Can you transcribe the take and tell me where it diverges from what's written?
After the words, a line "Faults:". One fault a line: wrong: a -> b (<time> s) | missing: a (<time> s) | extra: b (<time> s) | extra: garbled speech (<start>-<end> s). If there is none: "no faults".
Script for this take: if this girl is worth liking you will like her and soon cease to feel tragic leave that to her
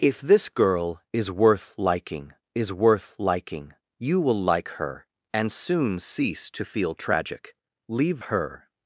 if this girl is worth liking is worth liking you will like her and soon cease to feel tragic leave her
Faults:
extra: is worth liking (2.5 s)
missing: that to (8.2 s)